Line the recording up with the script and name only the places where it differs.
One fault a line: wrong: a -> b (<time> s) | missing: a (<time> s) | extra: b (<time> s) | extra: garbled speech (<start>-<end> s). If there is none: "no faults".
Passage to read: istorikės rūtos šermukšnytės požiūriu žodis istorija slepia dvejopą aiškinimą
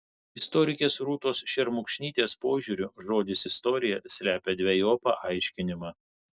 no faults